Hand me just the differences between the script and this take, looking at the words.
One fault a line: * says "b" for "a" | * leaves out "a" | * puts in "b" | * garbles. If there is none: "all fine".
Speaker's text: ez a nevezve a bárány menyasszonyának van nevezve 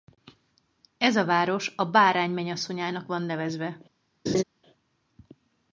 * says "város" for "nevezve"